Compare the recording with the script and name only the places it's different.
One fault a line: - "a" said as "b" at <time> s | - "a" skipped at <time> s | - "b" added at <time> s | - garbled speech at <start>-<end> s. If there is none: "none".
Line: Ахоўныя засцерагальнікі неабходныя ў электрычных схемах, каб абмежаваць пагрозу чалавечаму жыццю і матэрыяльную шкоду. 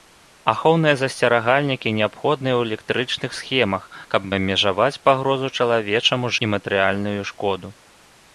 - "жыццю" skipped at 6.4 s